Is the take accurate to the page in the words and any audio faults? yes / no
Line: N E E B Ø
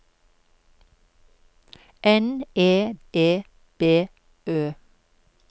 yes